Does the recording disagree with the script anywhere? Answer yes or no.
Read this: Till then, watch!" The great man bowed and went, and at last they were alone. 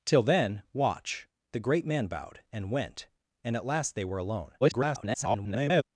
yes